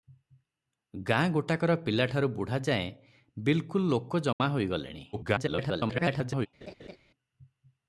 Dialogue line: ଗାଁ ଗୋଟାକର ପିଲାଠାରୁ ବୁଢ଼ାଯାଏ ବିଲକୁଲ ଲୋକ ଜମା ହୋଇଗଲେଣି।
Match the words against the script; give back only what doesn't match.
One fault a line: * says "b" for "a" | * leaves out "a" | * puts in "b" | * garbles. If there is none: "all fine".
* garbles